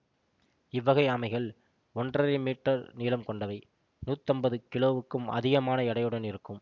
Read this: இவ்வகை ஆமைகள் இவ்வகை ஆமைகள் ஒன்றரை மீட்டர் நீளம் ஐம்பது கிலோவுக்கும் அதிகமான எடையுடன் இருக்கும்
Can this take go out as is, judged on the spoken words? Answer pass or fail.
fail